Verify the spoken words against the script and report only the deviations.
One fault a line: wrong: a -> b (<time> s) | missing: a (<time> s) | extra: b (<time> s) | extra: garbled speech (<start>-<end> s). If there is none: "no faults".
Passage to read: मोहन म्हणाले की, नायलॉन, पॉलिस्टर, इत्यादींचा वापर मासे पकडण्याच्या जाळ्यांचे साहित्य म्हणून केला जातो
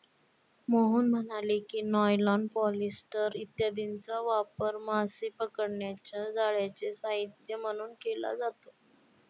no faults